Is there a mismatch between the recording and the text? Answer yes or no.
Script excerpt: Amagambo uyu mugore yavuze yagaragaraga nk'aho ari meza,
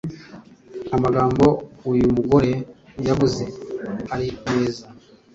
yes